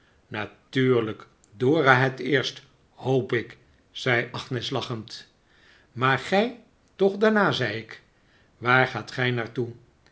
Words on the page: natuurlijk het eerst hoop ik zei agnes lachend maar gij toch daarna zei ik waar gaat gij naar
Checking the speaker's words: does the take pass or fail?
fail